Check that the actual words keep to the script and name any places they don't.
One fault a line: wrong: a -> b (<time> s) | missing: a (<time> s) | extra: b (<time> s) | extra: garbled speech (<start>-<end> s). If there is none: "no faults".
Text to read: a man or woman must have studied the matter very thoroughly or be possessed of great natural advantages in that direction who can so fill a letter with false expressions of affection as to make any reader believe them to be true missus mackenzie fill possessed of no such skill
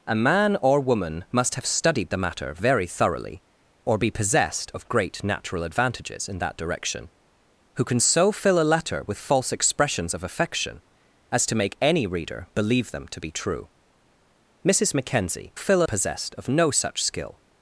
no faults